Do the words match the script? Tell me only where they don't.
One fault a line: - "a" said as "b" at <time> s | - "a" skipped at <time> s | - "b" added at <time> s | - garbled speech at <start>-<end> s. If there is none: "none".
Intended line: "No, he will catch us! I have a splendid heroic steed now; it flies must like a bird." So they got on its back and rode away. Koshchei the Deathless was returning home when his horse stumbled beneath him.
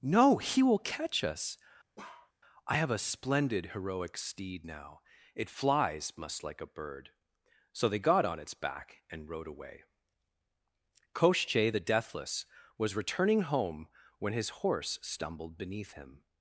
none